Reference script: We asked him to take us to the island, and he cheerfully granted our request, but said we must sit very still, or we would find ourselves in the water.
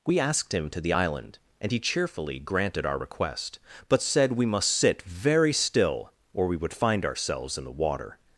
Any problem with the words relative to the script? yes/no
yes